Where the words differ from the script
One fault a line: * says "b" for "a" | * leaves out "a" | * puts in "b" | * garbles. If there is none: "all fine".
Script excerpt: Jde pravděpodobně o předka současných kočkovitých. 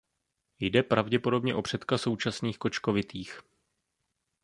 all fine